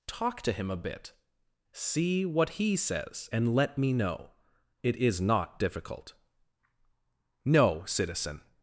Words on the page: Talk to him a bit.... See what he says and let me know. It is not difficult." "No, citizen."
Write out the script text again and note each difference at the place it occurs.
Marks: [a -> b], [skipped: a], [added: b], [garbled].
Talk to him a bit.... See what he says and let me know. It is not difficult." "No, citizen."